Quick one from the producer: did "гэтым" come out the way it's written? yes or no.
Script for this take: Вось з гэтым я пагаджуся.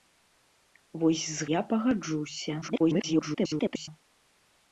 no